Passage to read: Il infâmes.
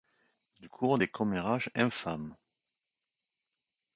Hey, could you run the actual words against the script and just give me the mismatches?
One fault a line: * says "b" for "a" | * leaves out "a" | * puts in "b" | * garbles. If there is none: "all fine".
* puts in "court des commérages"